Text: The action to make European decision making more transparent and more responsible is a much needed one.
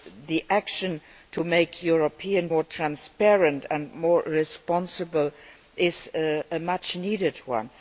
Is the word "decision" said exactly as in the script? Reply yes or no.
no